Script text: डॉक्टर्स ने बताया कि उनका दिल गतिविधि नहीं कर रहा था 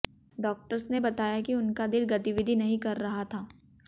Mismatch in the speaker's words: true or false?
false